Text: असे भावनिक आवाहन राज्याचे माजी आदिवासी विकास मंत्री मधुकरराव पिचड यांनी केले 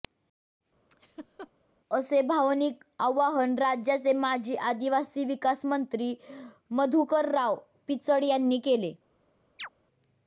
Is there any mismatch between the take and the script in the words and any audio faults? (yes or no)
yes